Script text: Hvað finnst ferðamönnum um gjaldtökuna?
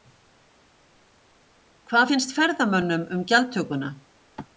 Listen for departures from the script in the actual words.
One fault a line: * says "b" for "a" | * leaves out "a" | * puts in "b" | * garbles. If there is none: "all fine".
all fine